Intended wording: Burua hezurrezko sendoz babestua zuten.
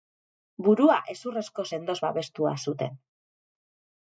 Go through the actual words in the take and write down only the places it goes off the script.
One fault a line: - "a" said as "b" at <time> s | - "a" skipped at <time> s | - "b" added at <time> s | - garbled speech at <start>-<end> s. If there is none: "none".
none